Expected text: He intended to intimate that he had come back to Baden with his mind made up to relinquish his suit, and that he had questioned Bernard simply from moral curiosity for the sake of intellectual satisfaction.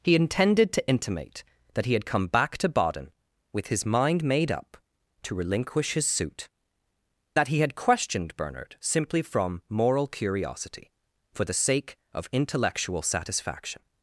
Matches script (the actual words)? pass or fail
fail